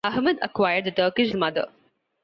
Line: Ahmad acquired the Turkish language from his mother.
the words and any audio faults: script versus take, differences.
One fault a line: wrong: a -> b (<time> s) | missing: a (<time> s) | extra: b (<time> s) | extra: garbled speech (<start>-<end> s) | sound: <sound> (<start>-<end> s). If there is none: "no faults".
missing: language from his (1.4 s)